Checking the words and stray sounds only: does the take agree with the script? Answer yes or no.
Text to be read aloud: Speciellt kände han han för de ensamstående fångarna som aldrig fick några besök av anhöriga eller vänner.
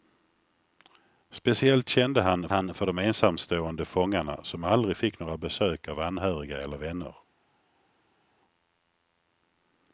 yes